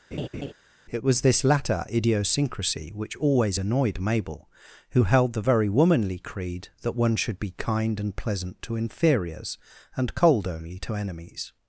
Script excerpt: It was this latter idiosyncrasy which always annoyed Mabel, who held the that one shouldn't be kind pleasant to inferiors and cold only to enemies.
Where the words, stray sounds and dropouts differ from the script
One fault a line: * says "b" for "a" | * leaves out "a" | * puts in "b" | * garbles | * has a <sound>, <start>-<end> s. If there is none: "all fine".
* has a laugh, 0.1-0.5 s
* puts in "very womanly creed"
* says "should" for "shouldn't"
* puts in "and"